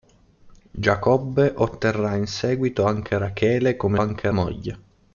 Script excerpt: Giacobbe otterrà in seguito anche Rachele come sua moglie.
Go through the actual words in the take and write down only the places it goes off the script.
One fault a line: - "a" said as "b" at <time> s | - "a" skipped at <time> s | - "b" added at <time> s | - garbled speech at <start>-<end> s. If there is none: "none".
- "sua" said as "anche" at 4.0 s